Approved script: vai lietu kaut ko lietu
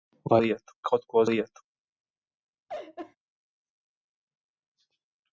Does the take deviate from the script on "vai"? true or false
false